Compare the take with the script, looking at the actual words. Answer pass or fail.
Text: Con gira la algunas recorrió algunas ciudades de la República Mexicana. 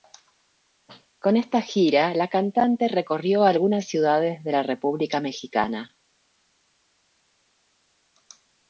fail